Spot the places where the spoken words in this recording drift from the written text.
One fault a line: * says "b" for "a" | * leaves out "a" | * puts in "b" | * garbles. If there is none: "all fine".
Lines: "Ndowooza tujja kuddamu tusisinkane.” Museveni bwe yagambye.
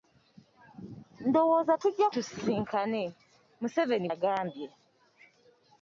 * leaves out "kuddamu"
* leaves out "bwe"